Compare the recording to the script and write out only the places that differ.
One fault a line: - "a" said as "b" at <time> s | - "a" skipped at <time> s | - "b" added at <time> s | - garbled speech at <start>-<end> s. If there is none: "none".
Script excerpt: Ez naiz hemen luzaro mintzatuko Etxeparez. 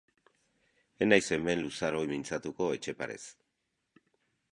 none